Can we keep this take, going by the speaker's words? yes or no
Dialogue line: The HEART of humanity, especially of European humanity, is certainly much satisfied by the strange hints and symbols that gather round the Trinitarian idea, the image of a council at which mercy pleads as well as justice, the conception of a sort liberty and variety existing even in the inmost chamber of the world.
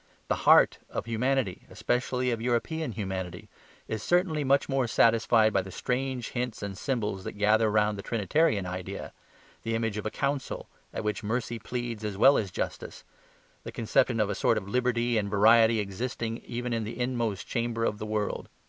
no